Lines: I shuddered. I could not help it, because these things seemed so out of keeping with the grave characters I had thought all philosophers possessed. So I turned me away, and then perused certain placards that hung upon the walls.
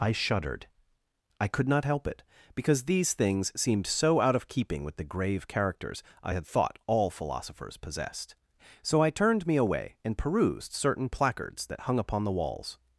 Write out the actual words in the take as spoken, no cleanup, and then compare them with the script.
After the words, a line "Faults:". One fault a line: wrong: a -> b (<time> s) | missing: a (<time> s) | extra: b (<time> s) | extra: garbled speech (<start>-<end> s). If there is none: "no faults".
I shuddered. I could not help it, because these things seemed so out of keeping with the grave characters I had thought all philosophers possessed. So I turned me away, and perused certain placards that hung upon the walls.
Faults:
missing: then (10.2 s)